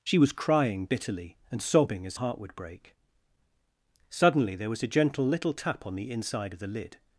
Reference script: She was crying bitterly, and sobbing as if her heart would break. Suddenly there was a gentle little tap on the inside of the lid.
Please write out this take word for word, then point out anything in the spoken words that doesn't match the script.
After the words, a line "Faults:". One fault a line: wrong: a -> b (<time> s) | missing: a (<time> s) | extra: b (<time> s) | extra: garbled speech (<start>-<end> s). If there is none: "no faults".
She was crying bitterly, and sobbing as heart would break. Suddenly there was a gentle little tap on the inside of the lid.
Faults:
missing: if her (2.2 s)